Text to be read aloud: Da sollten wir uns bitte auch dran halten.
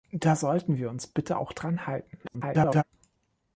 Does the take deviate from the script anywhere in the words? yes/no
yes